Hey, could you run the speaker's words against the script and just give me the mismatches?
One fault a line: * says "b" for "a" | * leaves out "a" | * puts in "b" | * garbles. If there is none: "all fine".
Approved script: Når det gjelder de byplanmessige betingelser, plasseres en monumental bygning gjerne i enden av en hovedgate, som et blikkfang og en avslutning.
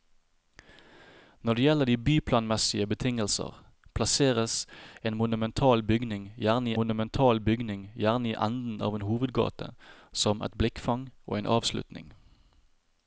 * puts in "monumental bygning gjerne"